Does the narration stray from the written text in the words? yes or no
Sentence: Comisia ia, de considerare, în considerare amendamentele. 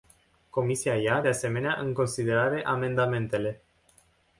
yes